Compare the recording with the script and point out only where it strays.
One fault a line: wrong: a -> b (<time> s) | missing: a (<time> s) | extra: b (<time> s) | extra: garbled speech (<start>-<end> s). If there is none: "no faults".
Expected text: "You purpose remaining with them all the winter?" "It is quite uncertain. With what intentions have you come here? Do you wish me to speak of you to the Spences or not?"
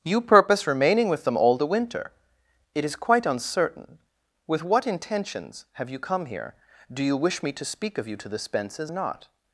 missing: or (8.9 s)